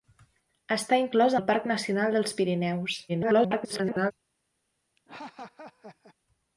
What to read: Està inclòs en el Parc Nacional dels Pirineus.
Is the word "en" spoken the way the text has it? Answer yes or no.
no